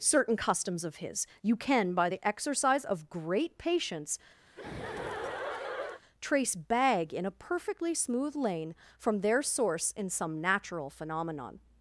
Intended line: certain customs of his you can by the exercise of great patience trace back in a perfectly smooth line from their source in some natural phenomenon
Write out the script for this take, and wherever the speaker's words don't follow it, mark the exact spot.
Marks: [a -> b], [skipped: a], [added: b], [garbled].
certain customs of his you can by the exercise of great patience trace [back -> bag] in a perfectly smooth [line -> lane] from their source in some natural phenomenon